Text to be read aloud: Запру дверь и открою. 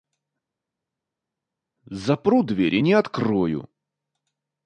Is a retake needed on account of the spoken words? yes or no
yes